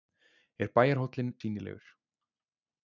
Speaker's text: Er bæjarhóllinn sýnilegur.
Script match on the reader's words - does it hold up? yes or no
yes